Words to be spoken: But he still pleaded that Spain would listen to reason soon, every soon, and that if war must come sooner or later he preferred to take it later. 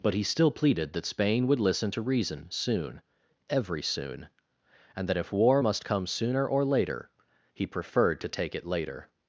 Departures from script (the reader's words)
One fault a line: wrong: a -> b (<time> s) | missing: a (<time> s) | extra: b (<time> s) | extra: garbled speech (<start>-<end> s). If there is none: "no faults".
no faults